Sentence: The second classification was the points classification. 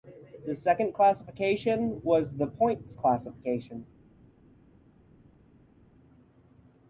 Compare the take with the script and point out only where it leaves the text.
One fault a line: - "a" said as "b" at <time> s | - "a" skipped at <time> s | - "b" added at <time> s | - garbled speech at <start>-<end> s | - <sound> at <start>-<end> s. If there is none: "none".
none